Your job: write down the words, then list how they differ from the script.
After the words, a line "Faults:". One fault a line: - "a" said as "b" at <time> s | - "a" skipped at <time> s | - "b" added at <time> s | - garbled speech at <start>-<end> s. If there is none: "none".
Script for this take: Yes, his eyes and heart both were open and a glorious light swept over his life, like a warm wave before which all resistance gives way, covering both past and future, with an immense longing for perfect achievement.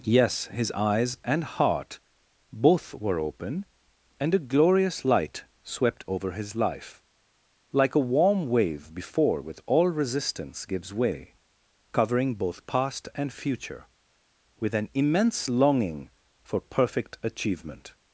Yes, his eyes and heart both were open and a glorious light swept over his life, like a warm wave before with all resistance gives way, covering both past and future, with an immense longing for perfect achievement.
Faults:
- "which" said as "with" at 9.4 s